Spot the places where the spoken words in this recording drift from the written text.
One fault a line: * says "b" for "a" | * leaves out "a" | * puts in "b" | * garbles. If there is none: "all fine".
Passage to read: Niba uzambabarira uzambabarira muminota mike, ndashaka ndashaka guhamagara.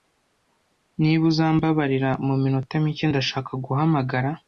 * leaves out "uzambabarira"
* leaves out "ndashaka"